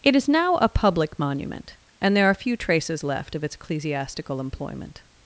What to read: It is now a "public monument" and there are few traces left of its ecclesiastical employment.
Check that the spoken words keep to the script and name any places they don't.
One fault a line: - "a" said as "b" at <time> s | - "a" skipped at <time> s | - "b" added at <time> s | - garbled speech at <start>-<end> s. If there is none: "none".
none